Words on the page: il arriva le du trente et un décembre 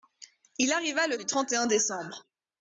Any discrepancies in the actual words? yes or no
no